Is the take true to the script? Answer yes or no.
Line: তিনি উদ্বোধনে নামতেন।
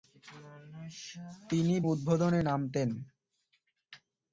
yes